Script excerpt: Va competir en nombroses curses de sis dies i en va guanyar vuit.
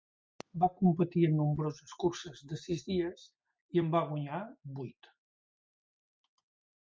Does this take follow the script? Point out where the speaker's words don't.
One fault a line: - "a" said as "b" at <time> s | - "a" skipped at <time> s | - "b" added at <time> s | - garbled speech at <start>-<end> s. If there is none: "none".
none